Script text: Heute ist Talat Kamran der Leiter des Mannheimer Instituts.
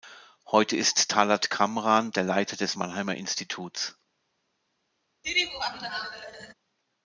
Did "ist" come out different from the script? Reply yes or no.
no